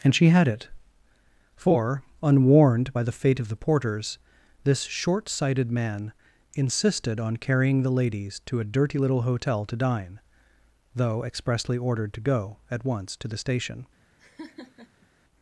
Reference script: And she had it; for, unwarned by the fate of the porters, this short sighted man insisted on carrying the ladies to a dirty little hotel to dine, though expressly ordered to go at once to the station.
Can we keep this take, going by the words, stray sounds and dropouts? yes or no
no